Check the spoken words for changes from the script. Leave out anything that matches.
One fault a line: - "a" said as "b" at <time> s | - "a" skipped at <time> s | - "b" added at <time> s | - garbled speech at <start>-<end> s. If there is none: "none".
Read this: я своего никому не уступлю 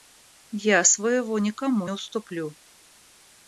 - "не" skipped at 1.9 s